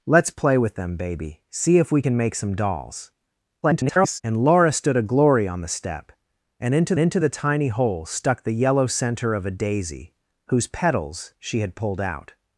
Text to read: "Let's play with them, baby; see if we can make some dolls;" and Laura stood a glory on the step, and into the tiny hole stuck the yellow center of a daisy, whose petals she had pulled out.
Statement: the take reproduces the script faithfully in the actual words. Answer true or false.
false